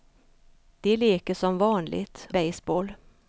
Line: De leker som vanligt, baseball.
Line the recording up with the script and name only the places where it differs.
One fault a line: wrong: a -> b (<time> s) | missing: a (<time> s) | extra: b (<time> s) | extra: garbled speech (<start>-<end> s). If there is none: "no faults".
no faults